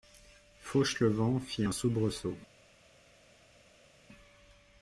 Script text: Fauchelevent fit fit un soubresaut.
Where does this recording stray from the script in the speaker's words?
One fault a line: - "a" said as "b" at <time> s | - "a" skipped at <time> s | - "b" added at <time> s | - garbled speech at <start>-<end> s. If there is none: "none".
- "fit" skipped at 1.6 s